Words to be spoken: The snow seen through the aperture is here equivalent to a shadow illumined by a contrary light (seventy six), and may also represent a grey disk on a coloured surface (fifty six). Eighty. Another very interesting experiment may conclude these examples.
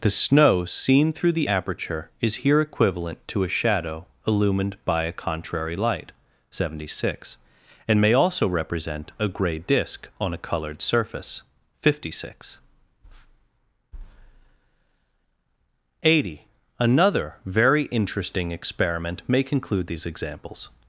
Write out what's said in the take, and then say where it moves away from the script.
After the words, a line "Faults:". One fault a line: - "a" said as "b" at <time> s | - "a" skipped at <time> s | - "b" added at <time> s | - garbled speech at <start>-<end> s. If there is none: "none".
The snow seen through the aperture is here equivalent to a shadow illumined by a contrary light (seventy six), and may also represent a grey disk on a coloured surface (fifty six). Eighty. Another very interesting experiment may conclude these examples.
Faults:
none